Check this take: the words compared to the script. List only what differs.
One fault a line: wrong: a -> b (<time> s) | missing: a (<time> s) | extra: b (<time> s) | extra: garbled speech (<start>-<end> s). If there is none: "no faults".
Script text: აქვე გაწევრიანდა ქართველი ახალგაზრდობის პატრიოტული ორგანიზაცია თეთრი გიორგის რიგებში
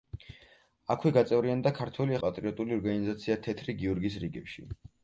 missing: ახალგაზრდობის (2.2 s)